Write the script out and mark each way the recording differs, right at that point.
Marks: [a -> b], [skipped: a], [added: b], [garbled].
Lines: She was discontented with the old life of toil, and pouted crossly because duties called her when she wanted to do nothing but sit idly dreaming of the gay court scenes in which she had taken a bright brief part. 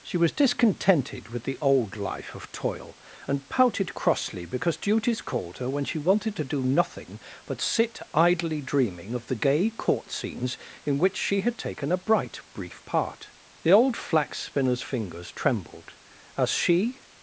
She was discontented with the old life of toil, and pouted crossly because duties called her when she wanted to do nothing but sit idly dreaming of the gay court scenes in which she had taken a bright brief part. [added: The old Flax spinner's fingers trembled as she]